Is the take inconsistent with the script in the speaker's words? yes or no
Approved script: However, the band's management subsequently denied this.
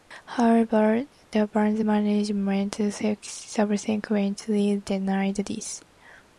no